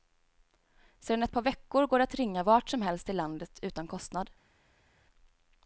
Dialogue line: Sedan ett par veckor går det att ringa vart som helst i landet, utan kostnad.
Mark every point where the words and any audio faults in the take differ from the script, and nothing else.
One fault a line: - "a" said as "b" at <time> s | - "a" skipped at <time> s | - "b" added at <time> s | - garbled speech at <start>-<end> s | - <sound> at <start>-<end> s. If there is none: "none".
none